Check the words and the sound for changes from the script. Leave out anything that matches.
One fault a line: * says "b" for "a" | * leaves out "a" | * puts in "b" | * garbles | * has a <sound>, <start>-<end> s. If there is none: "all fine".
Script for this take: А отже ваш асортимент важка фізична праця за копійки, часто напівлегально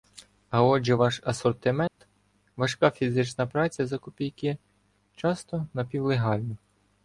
* has a dropout, 1.9-2.0 s